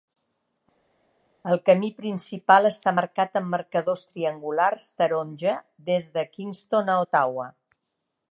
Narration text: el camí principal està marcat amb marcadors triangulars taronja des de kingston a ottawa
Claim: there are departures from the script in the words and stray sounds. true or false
false